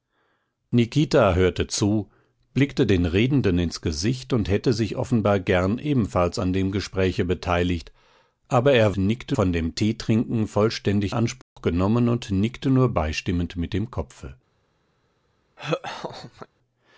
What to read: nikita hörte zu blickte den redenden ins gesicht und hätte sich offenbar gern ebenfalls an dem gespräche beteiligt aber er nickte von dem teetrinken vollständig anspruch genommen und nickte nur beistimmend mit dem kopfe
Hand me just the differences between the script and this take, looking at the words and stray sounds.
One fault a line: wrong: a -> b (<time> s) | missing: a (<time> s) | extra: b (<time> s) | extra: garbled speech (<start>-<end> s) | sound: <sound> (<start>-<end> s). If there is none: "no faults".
sound: dropout (11.4-11.6 s)
sound: laugh (15.6-16.5 s)